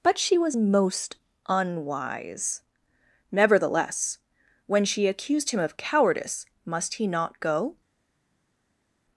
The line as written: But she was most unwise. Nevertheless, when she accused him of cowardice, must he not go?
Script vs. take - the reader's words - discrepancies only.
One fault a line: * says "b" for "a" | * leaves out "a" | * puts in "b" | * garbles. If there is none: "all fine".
all fine